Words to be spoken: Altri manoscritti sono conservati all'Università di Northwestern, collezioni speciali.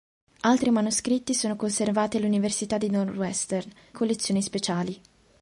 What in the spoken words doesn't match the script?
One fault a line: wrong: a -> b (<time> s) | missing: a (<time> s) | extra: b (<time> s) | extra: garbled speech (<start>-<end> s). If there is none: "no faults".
no faults